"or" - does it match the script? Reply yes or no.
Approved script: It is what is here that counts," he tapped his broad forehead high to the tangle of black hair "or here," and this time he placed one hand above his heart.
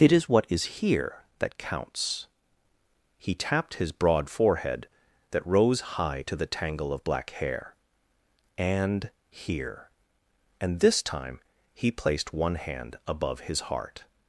no